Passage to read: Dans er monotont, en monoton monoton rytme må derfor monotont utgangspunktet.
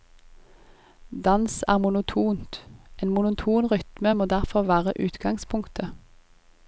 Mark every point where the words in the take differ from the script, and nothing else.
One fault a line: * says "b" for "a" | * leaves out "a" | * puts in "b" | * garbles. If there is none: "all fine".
* leaves out "monoton"
* says "være" for "monotont"